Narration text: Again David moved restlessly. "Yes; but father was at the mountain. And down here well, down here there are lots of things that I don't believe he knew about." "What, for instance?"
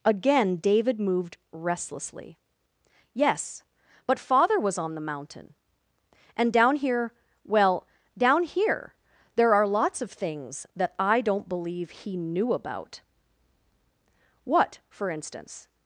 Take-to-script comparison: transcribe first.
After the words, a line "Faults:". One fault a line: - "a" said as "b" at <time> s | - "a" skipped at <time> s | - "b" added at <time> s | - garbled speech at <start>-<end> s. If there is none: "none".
Again David moved restlessly. "Yes; but father was on the mountain. And down here well, down here there are lots of things that I don't believe he knew about." "What, for instance?"
Faults:
- "at" said as "on" at 4.8 s